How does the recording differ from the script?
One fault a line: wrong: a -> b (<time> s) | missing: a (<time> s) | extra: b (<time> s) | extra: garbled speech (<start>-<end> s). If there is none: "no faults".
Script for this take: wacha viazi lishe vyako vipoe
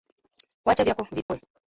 missing: viazi lishe (0.8 s)